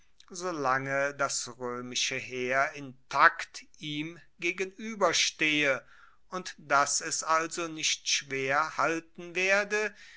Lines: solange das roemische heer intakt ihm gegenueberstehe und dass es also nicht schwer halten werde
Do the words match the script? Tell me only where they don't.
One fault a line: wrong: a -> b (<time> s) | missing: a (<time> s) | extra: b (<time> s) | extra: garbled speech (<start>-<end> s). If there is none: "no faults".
no faults